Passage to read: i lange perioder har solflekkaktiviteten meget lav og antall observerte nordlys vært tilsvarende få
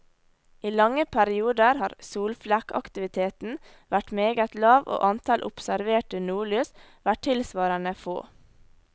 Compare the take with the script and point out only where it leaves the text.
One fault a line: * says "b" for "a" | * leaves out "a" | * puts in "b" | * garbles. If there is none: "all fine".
* puts in "vært"